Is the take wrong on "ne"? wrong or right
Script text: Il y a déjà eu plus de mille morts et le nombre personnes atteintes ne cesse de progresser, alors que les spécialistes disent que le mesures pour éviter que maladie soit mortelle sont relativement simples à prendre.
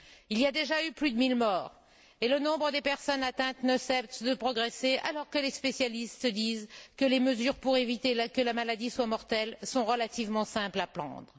right